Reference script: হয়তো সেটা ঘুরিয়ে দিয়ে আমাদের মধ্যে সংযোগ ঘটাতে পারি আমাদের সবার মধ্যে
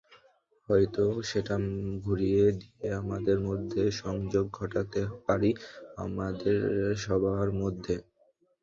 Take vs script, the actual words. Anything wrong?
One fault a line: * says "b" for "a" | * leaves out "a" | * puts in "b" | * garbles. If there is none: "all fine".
all fine